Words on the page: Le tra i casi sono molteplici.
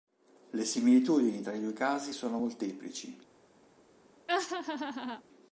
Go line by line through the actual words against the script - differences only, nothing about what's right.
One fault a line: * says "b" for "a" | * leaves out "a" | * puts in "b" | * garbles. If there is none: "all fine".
* puts in "similitudini"
* puts in "due"